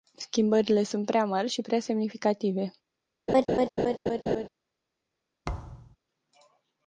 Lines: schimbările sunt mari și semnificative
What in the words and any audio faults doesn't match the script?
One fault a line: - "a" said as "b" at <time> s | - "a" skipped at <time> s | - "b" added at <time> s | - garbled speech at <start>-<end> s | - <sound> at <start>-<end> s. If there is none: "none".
- "prea" added at 1.1 s
- "prea" added at 1.6 s
- laugh at 3.3-4.5 s
- thud at 5.4-6.0 s